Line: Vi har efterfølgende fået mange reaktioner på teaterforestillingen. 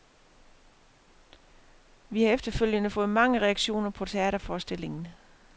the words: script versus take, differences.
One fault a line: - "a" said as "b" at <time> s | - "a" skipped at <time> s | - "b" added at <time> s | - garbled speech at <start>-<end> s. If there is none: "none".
none